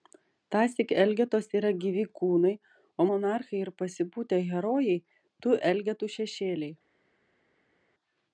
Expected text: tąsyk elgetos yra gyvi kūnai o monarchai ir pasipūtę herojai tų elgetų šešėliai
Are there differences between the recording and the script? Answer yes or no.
no